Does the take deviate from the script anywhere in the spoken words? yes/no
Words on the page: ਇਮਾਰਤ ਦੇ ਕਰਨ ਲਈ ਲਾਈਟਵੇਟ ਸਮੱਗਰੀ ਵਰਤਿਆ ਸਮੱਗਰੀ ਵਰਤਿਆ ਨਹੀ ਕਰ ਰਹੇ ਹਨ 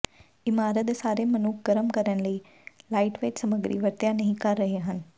yes